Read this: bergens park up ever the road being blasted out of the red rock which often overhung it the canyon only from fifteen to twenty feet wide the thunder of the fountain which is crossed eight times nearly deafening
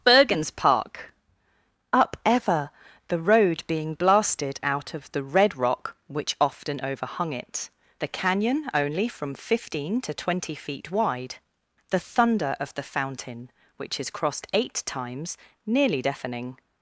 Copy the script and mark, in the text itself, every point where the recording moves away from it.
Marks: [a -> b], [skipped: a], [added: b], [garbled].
bergens park up ever the road being blasted out of the red rock which often overhung it the canyon only from fifteen to twenty feet wide the thunder of the fountain which is crossed eight times nearly deafening